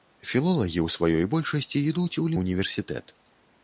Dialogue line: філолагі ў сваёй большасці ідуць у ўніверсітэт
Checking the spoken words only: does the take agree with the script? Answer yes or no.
yes